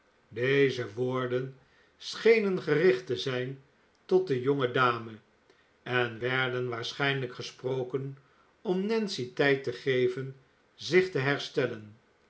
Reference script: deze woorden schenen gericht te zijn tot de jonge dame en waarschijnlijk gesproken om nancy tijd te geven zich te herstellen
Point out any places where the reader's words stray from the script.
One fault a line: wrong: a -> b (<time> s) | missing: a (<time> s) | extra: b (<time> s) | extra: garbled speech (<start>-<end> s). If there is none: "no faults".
extra: werden (6.2 s)